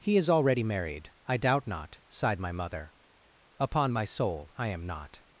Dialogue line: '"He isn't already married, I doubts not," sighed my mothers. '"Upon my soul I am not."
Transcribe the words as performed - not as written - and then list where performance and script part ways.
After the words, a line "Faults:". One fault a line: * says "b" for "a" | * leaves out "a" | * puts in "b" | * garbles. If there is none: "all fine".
'"He is already married, I doubt not," sighed my mother. '"Upon my soul I am not."
Faults:
* says "is" for "isn't"
* says "doubt" for "doubts"
* says "mother" for "mothers"